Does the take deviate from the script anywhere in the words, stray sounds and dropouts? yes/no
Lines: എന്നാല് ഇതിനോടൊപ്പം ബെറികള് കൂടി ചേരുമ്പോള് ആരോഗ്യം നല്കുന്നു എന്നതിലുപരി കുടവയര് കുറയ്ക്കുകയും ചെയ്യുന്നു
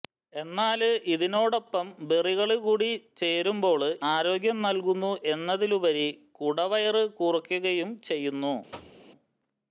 yes